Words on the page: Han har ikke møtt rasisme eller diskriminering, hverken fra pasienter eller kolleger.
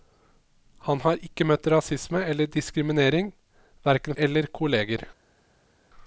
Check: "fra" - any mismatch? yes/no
yes